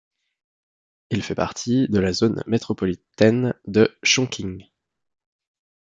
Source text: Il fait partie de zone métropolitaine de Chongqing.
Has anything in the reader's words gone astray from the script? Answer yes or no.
yes